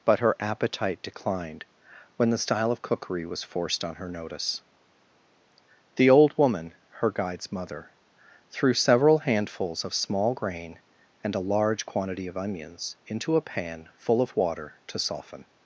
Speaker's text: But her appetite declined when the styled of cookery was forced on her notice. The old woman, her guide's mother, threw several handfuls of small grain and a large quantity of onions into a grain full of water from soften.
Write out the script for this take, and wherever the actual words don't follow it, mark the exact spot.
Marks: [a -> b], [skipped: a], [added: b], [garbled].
But her appetite declined when the [styled -> style] of cookery was forced on her notice. The old woman, her guide's mother, threw several handfuls of small grain and a large quantity of onions into a [grain -> pan] full of water [from -> to] soften.